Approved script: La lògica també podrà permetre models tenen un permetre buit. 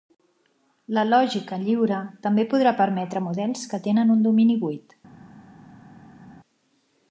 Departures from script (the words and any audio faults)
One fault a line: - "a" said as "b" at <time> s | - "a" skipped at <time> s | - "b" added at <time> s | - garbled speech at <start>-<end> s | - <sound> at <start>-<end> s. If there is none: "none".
- "lliure" added at 1.6 s
- "que" added at 3.7 s
- "permetre" said as "domini" at 4.3 s